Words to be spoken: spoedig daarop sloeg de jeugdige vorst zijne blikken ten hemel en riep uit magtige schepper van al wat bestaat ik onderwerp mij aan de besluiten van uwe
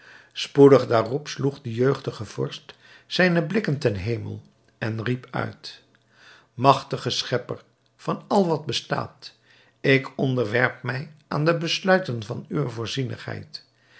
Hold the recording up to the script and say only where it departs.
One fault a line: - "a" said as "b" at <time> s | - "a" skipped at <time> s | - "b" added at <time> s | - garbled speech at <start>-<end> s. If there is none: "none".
none